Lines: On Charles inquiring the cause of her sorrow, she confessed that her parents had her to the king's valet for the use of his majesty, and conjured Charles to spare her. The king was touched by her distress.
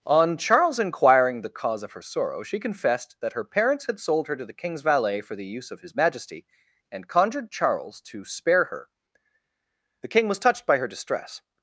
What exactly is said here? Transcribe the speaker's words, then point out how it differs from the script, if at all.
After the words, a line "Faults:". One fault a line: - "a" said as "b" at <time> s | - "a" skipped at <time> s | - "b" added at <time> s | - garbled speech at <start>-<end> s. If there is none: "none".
On Charles inquiring the cause of her sorrow, she confessed that her parents had sold her to the king's valet for the use of his majesty, and conjured Charles to spare her. The king was touched by her distress.
Faults:
- "sold" added at 4.0 s